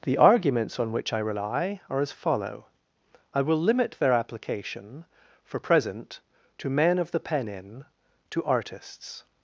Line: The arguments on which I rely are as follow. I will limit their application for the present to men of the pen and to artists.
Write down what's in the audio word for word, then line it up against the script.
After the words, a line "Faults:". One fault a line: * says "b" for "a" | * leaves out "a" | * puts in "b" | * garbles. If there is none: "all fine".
The arguments on which I rely are as follow. I will limit their application for present to men of the pen in to artists.
Faults:
* leaves out "the"
* says "in" for "and"